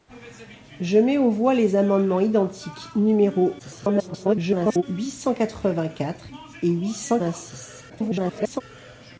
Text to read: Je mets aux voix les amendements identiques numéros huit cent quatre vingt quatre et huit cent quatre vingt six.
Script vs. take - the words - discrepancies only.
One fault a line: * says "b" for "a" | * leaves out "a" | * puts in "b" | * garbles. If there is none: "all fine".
* garbles
* leaves out "quatre"
* garbles